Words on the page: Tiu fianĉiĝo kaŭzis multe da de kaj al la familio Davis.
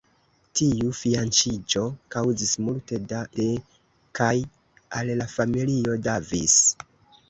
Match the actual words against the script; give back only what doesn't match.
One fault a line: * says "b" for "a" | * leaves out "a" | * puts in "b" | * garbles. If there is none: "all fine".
all fine